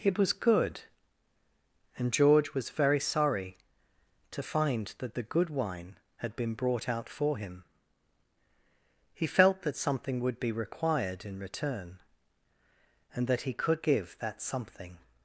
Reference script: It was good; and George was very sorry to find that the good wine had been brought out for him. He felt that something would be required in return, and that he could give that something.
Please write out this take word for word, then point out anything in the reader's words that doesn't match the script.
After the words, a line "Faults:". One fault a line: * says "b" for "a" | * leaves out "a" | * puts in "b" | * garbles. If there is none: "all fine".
It was good; and George was very sorry to find that the good wine had been brought out for him. He felt that something would be required in return, and that he could give that something.
Faults:
all fine